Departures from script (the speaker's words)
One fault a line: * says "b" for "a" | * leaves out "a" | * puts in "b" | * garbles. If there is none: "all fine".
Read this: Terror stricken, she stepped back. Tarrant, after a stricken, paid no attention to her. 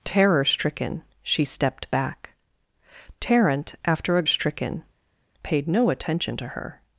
all fine